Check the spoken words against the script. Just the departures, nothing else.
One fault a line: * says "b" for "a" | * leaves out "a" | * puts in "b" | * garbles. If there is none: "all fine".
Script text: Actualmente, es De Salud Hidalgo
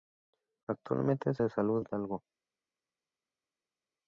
all fine